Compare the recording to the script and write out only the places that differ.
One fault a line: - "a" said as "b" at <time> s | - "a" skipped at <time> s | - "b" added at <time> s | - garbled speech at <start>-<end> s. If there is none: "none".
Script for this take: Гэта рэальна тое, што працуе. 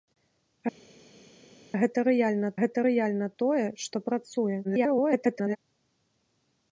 - "гэта рэальна" added at 2.6 s
- garbled speech at 4.6-5.6 s